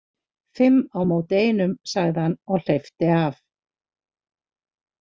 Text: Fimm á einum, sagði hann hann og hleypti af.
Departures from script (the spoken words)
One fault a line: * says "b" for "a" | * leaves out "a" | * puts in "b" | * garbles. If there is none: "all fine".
* puts in "móti"
* leaves out "hann"